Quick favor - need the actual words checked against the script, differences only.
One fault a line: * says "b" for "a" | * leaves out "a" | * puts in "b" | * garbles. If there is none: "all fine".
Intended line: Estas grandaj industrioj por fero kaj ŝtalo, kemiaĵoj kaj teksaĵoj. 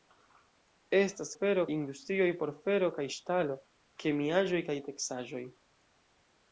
* says "fero" for "grandaj"